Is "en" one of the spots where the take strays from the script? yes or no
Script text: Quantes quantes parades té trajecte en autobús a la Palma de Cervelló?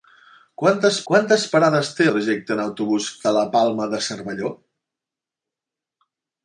no